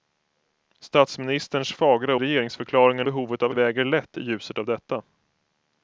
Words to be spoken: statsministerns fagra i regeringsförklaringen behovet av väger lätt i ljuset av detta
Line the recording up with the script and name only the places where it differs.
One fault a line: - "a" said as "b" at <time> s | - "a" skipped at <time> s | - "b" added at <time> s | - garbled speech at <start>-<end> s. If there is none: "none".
none